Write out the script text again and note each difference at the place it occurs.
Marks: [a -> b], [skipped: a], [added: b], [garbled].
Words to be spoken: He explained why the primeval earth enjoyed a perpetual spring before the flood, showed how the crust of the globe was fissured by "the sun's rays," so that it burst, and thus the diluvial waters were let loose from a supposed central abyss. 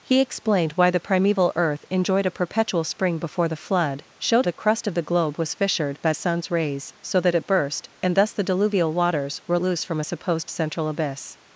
He explained why the primeval earth enjoyed a perpetual spring before the flood, showed [skipped: how] the crust of the globe was fissured by [skipped: "the] sun's rays," so that it burst, and thus the diluvial waters were [skipped: let] loose from a supposed central abyss.